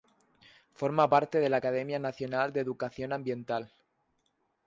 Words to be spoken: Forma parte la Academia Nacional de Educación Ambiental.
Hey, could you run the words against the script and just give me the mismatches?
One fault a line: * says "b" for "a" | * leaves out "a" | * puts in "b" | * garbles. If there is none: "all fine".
* puts in "de"